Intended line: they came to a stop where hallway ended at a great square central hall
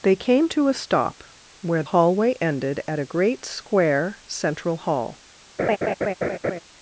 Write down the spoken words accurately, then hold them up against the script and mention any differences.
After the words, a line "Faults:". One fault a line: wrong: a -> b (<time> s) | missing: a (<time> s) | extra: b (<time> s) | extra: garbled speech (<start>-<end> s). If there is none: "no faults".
they came to a stop where hallway ended at a great square central hall
Faults:
no faults